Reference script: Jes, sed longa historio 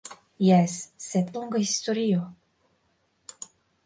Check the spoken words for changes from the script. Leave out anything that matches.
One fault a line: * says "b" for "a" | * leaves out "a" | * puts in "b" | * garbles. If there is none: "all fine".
all fine